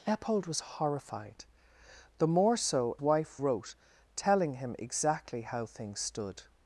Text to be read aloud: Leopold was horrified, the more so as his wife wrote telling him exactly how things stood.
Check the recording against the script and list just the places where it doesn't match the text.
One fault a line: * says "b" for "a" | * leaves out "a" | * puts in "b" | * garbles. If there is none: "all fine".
* leaves out "as his"